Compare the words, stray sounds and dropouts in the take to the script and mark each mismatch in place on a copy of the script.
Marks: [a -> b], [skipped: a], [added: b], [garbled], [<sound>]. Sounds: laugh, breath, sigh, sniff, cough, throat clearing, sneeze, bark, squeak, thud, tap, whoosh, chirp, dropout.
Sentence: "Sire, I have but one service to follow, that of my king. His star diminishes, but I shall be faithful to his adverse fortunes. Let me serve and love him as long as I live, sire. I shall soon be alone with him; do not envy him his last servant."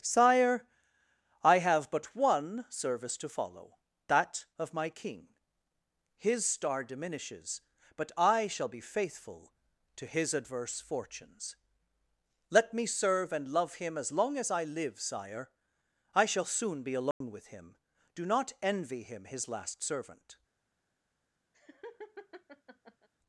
"Sire, I have but one service to follow, that of my king. His star diminishes, but I shall be faithful to his adverse fortunes. Let me serve and love him as long as I live, sire. I shall soon be alone [dropout] with him; do not envy him his last servant." [laugh]